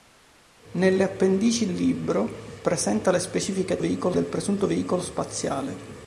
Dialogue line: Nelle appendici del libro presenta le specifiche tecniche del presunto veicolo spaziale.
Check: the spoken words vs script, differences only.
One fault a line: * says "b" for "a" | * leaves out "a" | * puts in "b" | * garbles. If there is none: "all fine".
* leaves out "del"
* says "veicolo" for "tecniche"